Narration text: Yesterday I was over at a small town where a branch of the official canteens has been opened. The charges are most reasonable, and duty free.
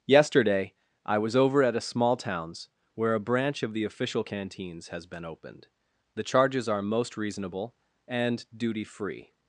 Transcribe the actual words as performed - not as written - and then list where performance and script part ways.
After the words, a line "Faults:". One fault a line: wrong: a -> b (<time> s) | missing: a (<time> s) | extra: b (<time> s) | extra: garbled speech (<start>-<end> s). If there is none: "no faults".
Yesterday I was over at a small towns where a branch of the official canteens has been opened. The charges are most reasonable, and duty free.
Faults:
wrong: town -> towns (2.2 s)